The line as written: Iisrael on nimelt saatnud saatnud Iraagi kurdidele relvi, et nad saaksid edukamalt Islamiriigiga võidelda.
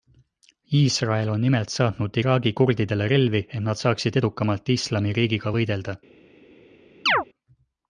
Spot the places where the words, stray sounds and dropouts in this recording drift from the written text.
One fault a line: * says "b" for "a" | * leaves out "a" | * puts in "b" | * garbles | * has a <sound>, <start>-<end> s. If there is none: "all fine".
* leaves out "saatnud"
* has a chirp, 7.1-7.2 s